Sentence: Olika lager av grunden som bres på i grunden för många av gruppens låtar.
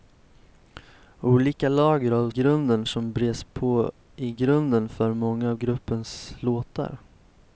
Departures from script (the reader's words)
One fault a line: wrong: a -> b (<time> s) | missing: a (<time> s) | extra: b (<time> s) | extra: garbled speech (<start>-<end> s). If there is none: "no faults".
no faults